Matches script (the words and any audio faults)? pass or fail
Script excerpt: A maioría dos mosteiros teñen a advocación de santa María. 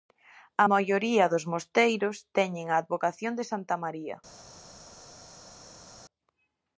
pass